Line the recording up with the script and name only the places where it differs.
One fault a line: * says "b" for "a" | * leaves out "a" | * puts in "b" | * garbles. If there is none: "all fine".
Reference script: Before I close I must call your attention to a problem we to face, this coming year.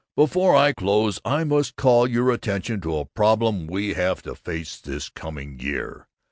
* puts in "have"